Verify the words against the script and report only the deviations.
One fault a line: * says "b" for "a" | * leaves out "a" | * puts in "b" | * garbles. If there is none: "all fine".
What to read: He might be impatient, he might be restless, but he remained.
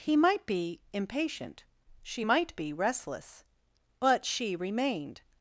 * says "she" for "he"
* says "she" for "he"